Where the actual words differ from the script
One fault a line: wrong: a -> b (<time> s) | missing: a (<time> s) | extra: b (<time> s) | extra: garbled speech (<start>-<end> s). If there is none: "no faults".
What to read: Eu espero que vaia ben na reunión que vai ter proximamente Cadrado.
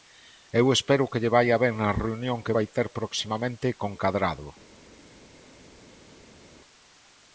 extra: lle (1.2 s)
extra: con (3.8 s)